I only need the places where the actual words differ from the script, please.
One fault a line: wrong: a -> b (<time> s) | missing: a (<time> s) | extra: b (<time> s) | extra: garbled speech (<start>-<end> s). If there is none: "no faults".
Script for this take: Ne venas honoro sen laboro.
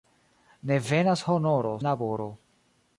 missing: sen (1.8 s)